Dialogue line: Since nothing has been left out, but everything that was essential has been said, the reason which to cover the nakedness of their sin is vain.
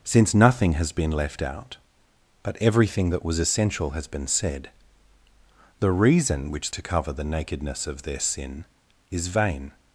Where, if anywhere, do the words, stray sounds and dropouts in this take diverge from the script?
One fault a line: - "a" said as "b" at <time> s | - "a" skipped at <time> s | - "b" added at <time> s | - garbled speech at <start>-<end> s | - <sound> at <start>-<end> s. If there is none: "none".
none